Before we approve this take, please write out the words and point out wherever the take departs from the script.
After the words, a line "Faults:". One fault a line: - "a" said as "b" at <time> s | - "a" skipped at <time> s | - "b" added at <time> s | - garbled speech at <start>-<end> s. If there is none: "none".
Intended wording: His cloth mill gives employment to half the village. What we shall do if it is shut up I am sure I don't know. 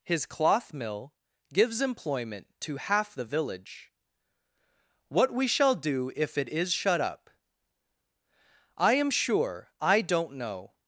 His cloth mill gives employment to half the village. What we shall do if it is shut up I am sure I don't know.
Faults:
none